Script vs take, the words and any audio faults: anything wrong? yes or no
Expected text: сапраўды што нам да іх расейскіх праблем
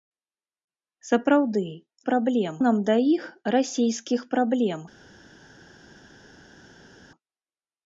yes